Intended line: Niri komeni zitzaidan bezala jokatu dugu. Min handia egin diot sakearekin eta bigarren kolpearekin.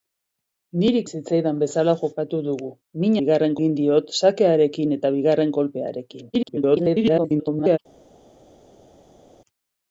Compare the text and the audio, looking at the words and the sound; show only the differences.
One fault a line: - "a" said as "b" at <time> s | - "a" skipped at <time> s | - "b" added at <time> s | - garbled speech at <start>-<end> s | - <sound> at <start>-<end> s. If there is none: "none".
- "komeni" skipped at 1.0 s
- "handia" said as "bigarren" at 3.2 s
- garbled speech at 6.3-7.8 s